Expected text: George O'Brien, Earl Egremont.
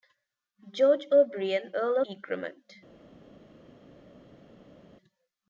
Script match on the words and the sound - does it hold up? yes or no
yes